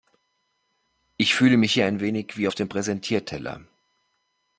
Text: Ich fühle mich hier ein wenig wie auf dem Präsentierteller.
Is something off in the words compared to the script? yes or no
no